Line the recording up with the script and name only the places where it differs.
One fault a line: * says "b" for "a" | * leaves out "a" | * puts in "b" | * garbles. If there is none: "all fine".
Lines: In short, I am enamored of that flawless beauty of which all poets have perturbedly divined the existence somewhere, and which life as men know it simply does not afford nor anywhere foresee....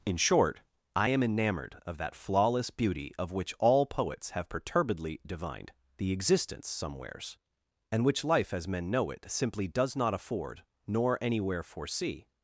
* says "somewheres" for "somewhere"